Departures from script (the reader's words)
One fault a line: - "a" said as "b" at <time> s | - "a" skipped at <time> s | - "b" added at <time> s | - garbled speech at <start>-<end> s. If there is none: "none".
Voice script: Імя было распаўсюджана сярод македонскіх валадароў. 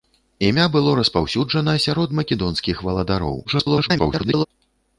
- garbled speech at 3.4-4.5 s